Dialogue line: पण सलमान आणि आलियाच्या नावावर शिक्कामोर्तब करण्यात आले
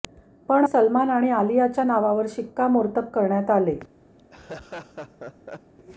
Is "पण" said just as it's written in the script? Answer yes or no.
yes